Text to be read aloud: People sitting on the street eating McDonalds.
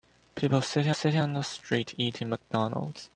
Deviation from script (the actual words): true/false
true